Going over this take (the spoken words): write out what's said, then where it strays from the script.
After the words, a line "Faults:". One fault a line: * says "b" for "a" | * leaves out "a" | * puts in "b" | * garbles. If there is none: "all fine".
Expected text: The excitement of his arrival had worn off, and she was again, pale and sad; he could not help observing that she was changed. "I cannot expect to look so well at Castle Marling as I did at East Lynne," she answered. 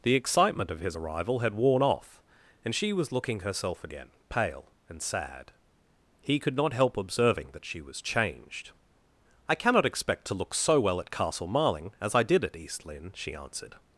The excitement of his arrival had worn off, and she was looking herself again, pale and sad; he could not help observing that she was changed. "I cannot expect to look so well at Castle Marling as I did at East Lynne," she answered.
Faults:
* puts in "looking herself"